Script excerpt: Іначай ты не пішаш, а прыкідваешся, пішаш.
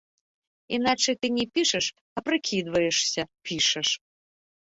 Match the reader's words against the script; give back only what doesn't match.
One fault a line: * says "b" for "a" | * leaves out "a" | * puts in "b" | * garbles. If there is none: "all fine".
all fine